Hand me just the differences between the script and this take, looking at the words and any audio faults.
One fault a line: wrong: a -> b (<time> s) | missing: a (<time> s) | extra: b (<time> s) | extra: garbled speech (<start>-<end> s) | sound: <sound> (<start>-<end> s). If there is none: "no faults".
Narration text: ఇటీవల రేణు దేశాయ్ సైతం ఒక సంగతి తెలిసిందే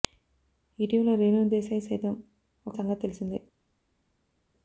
no faults